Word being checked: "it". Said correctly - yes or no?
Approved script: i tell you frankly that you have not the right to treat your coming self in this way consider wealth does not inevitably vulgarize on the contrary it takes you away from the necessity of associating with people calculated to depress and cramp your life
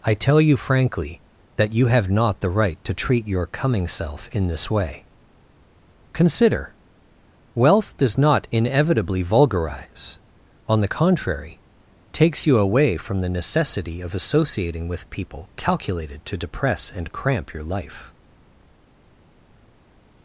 no